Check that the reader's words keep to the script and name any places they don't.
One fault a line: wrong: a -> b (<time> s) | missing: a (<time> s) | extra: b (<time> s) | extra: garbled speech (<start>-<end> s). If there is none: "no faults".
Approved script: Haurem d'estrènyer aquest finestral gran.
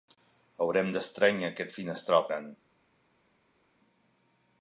no faults